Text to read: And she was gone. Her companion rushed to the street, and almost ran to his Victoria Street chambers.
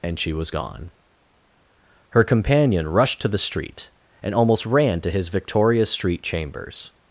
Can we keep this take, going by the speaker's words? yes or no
yes